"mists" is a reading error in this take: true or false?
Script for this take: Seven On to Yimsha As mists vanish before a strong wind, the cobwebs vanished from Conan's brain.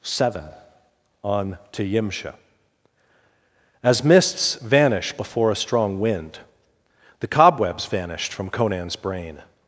false